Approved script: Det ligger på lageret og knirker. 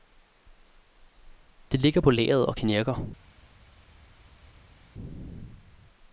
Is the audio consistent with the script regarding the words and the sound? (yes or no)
yes